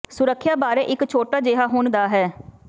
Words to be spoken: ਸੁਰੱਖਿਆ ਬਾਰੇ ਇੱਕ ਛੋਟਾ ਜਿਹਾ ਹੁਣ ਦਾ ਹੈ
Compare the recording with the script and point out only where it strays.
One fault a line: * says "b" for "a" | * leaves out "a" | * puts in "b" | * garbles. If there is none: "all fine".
all fine